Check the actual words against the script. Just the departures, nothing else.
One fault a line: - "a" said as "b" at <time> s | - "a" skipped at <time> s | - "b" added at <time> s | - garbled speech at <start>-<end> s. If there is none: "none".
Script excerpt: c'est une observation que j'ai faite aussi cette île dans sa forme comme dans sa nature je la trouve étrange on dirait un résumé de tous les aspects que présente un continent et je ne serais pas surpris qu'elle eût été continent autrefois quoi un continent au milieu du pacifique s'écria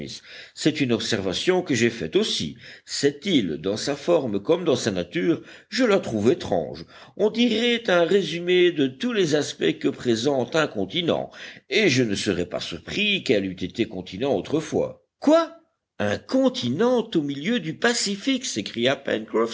none